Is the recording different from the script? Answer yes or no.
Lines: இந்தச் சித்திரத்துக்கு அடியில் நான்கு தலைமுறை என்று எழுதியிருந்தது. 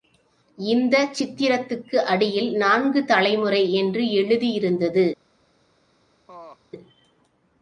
no